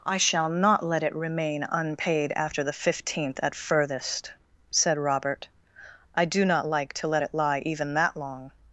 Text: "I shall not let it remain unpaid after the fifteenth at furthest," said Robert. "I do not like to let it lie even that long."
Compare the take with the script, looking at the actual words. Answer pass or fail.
pass